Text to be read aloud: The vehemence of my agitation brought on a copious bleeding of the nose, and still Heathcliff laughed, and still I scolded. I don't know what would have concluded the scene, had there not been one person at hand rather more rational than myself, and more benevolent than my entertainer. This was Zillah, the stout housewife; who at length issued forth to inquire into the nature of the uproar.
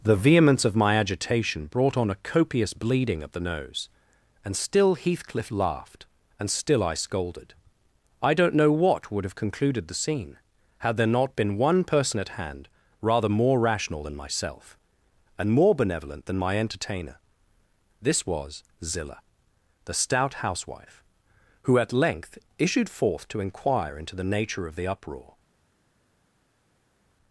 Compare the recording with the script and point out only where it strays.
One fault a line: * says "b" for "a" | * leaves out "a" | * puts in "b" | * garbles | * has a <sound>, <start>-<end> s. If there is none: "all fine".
all fine